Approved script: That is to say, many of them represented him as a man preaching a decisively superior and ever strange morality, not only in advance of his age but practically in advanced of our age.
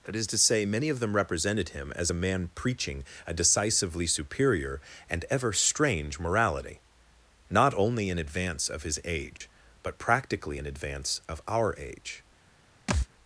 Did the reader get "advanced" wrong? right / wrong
wrong